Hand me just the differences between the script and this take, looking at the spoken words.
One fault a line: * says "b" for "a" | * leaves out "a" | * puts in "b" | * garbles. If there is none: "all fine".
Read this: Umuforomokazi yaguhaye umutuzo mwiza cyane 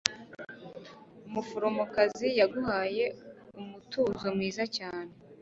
all fine